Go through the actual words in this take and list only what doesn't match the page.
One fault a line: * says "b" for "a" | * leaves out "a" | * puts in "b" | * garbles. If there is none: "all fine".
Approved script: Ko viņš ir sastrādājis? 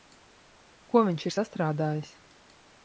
all fine